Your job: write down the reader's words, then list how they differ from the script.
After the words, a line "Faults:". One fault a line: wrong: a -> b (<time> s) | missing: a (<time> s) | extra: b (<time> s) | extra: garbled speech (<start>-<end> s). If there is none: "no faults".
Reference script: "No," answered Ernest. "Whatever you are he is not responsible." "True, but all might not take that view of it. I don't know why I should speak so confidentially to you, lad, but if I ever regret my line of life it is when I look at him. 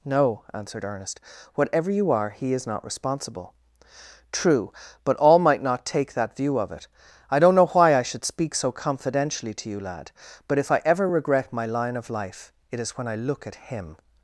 "No," answered Ernest. "Whatever you are he is not responsible." "True, but all might not take that view of it. I don't know why I should speak so confidentially to you, lad, but if I ever regret my line of life it is when I look at him.
Faults:
no faults